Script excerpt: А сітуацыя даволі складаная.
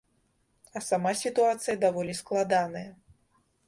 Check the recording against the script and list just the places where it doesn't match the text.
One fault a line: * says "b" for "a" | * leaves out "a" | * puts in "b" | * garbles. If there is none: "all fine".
* puts in "сама"